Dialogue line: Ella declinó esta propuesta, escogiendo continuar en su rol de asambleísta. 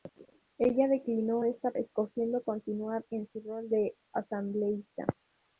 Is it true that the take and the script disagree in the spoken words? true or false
true